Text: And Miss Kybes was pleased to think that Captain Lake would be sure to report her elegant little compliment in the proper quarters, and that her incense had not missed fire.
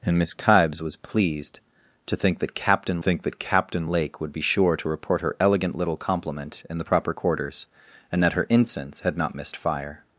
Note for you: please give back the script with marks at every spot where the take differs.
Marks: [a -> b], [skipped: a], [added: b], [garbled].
And Miss Kybes was pleased to think that Captain [added: think that Captain] Lake would be sure to report her elegant little compliment in the proper quarters, and that her incense had not missed fire.